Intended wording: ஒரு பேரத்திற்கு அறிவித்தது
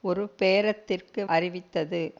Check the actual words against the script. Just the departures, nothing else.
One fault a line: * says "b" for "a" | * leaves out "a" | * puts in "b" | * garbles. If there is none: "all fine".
all fine